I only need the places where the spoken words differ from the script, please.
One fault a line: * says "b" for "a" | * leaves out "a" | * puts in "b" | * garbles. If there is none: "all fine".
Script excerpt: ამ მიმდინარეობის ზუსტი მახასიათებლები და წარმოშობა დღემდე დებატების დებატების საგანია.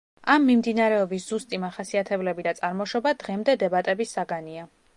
* leaves out "დებატების"